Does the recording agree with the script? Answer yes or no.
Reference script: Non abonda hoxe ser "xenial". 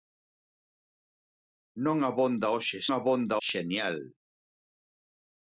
no